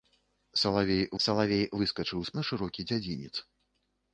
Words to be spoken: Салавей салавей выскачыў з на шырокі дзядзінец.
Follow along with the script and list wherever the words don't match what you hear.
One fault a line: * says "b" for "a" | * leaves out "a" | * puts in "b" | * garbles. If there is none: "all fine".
all fine